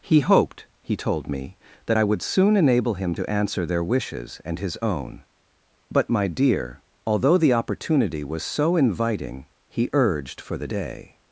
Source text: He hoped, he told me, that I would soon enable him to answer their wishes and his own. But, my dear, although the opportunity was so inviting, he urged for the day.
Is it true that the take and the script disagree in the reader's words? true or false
false